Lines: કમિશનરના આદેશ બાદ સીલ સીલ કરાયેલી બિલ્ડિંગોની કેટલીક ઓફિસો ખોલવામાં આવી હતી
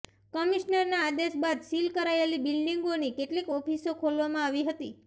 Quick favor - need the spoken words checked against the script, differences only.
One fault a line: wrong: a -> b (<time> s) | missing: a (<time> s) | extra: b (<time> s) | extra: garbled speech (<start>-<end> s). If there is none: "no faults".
missing: સીલ (1.9 s)